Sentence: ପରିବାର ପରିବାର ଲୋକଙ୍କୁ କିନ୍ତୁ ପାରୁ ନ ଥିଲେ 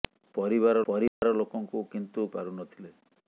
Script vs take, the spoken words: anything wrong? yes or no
no